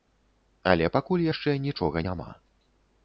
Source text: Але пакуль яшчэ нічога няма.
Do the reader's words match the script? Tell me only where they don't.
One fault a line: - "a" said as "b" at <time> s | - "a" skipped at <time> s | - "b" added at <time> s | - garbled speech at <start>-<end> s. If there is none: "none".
none